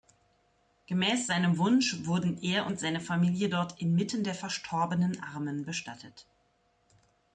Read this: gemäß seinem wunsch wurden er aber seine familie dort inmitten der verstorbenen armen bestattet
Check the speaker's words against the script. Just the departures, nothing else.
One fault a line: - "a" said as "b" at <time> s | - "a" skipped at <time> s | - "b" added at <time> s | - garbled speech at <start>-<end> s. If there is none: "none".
- "aber" said as "und" at 2.6 s